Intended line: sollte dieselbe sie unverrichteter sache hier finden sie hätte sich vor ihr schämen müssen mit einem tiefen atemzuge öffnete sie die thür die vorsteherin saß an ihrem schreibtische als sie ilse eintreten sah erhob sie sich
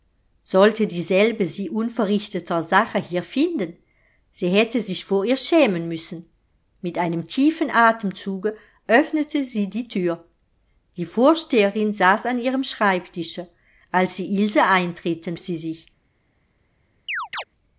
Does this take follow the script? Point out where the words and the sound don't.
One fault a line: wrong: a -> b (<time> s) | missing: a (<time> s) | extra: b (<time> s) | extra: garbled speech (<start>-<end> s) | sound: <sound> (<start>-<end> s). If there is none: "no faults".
missing: sah erhob (15.4 s)
sound: chirp (17.1-17.4 s)